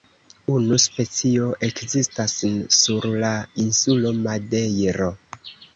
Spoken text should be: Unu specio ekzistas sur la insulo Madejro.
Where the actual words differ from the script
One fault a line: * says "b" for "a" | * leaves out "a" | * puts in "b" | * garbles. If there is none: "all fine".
all fine